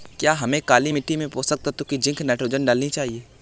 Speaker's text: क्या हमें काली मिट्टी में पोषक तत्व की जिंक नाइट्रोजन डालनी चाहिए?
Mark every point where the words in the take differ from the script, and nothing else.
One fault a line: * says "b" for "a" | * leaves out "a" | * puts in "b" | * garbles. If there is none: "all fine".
all fine